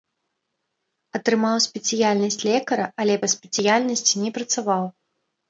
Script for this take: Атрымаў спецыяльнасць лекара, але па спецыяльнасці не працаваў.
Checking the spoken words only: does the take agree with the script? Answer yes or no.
yes